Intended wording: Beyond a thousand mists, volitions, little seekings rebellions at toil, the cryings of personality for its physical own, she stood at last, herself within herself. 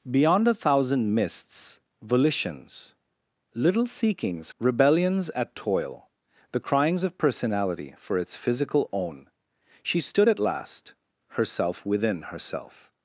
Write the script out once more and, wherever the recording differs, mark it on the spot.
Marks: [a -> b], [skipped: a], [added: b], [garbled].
Beyond a thousand mists, volitions, little seekings rebellions at toil, the cryings of personality for its physical own, she stood at last, herself within herself.